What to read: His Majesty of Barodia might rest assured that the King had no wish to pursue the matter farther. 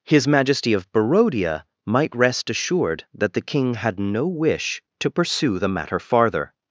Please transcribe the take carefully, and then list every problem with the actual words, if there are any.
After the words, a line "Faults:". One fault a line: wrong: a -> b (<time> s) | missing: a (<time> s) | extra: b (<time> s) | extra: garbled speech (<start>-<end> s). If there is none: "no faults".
His Majesty of Barodia might rest assured that the King had no wish to pursue the matter farther.
Faults:
no faults